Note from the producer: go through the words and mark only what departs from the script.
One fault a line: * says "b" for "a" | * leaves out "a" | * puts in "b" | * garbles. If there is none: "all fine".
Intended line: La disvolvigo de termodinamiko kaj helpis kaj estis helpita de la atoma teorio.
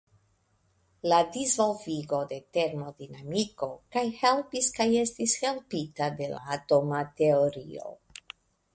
all fine